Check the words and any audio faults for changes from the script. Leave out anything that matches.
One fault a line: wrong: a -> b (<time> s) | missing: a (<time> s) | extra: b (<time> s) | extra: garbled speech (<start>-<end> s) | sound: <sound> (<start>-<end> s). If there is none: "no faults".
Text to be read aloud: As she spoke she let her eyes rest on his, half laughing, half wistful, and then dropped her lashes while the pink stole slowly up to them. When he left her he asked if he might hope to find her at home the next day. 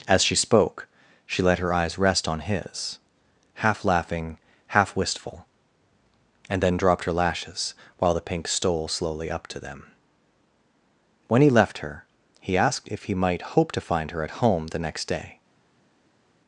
no faults